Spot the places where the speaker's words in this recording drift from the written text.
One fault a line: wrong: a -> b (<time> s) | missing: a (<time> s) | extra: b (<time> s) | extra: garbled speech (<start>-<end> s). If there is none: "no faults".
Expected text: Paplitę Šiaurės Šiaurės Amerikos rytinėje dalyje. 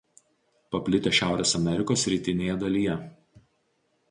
missing: Šiaurės (1.5 s)